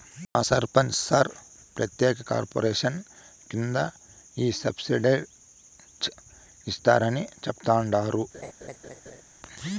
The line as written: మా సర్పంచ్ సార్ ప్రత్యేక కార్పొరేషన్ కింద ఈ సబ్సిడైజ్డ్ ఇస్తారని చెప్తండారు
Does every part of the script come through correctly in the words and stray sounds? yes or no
no